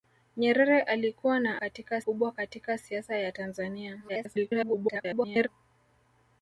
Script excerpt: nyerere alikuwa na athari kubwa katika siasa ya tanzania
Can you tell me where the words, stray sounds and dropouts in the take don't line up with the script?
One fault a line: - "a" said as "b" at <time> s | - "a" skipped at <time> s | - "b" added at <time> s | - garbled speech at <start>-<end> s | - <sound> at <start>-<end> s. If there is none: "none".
- "athari" said as "katika" at 1.5 s
- garbled speech at 4.1-5.5 s